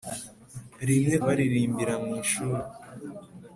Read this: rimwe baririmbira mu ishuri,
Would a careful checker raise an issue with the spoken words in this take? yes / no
no